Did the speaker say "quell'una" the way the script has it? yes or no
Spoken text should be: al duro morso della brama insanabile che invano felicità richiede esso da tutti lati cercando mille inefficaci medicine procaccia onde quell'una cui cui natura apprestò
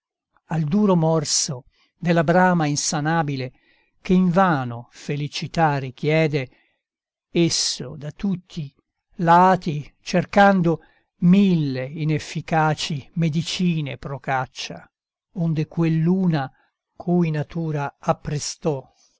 yes